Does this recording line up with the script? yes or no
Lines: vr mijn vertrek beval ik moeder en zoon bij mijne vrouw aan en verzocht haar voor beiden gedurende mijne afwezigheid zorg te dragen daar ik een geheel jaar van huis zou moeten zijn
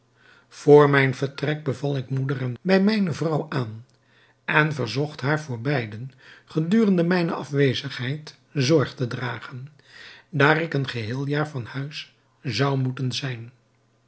no